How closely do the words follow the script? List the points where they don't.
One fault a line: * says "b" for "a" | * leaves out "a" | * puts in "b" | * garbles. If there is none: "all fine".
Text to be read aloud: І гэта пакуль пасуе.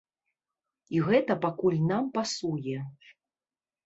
* puts in "нам"